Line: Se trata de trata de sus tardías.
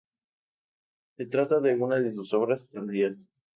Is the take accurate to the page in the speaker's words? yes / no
no